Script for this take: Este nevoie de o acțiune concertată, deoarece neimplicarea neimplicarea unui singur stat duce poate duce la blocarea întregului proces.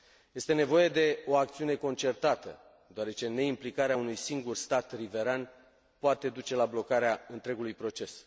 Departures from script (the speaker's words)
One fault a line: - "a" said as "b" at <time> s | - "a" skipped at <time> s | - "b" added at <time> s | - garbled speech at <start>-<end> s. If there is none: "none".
- "neimplicarea" skipped at 4.0 s
- "duce" said as "riveran" at 5.0 s